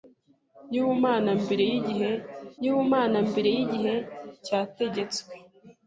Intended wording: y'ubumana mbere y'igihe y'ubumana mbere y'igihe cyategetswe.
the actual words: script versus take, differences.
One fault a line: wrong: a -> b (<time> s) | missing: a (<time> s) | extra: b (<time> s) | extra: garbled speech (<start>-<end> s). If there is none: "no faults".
no faults